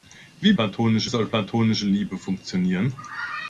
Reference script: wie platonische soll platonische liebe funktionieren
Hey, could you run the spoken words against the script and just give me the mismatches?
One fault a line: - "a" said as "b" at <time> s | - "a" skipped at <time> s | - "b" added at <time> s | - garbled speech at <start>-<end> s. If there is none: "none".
none